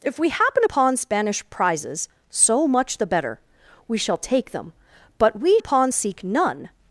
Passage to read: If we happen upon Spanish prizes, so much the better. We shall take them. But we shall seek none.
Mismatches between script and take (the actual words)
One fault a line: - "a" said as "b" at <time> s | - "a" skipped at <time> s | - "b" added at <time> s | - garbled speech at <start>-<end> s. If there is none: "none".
- "shall" said as "upon" at 5.6 s